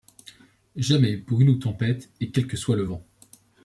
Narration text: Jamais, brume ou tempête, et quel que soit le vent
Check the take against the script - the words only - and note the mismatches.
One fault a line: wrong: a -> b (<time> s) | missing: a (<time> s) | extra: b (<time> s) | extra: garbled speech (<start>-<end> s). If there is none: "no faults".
no faults